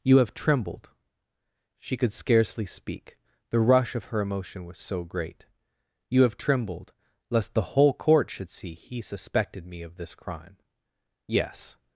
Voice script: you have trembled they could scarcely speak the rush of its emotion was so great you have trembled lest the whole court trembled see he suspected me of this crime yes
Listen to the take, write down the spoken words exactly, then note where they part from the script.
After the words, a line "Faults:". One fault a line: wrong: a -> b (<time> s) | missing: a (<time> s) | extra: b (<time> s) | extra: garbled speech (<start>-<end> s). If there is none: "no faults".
you have trembled she could scarcely speak the rush of her emotion was so great you have trembled lest the whole court should see he suspected me of this crime yes
Faults:
wrong: they -> she (1.8 s)
wrong: its -> her (4.0 s)
wrong: trembled -> should (8.3 s)